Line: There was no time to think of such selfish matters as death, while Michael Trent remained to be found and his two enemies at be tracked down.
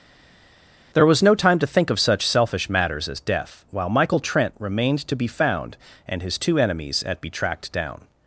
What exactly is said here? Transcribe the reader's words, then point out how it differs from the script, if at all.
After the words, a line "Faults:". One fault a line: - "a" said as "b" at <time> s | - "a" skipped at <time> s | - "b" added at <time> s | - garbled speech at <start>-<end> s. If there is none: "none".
There was no time to think of such selfish matters as death, while Michael Trent remained to be found and his two enemies at be tracked down.
Faults:
none